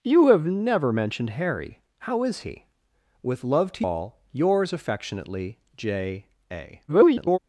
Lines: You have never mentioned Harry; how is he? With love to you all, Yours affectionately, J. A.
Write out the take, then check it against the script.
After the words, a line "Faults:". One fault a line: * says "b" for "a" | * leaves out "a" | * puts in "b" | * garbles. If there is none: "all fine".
You have never mentioned Harry; how is he? With love to all, Yours affectionately, J. A. [garbled]
Faults:
* leaves out "you"
* garbles